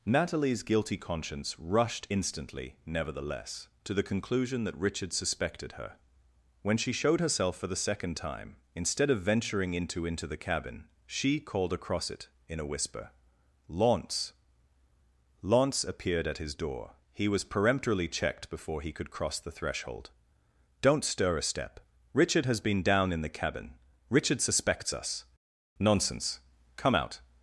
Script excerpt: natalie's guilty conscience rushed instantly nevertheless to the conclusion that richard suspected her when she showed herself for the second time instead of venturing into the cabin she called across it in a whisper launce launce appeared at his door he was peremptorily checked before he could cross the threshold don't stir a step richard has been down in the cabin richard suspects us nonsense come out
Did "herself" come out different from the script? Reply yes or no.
no